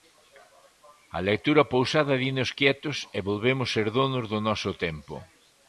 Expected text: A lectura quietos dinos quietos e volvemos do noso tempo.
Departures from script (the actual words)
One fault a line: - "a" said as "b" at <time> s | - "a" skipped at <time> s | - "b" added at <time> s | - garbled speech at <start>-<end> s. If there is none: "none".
- "quietos" said as "pausada" at 1.7 s
- "ser donos" added at 3.8 s